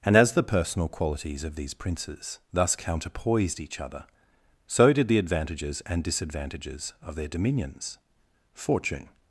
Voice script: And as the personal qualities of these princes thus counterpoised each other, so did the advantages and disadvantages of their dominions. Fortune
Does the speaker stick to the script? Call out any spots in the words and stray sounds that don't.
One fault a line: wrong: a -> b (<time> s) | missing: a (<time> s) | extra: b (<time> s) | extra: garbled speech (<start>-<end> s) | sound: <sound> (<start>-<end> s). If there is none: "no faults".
no faults